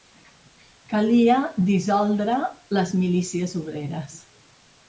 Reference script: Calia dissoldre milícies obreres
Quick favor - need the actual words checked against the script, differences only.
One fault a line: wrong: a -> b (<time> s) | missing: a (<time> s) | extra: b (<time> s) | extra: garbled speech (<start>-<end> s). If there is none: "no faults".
extra: les (2.8 s)